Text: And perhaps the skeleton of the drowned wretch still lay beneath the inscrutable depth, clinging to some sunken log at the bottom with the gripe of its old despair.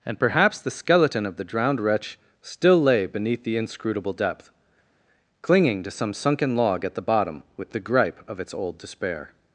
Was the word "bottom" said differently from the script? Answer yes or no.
no